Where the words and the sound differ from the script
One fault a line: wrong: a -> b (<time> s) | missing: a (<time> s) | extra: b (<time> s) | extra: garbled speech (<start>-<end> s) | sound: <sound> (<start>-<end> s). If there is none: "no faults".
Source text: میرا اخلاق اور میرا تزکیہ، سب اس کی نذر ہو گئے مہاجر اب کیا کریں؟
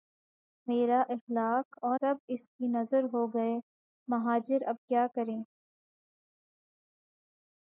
missing: میرا تزکیہ (2.0 s)